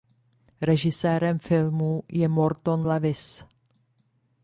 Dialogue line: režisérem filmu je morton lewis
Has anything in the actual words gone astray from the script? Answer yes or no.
no